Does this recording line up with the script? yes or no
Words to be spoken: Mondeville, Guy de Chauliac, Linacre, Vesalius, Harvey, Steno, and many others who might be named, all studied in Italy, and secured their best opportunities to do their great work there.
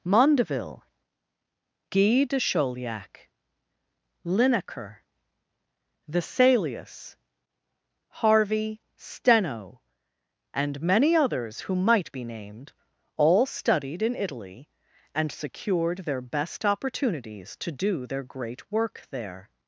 yes